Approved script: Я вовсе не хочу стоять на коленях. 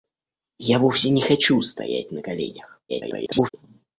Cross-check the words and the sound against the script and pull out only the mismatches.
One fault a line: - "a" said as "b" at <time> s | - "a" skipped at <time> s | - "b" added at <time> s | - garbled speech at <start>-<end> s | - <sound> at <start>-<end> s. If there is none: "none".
- garbled speech at 2.9-3.5 s